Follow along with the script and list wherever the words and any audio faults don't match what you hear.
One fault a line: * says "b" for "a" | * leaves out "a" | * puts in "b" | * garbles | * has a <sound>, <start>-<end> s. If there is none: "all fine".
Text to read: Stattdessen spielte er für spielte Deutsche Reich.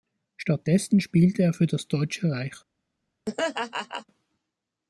* says "das" for "spielte"
* has a laugh, 3.3-4.1 s